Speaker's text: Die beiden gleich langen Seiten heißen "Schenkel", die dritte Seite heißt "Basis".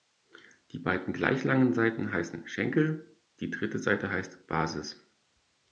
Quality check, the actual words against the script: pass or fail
pass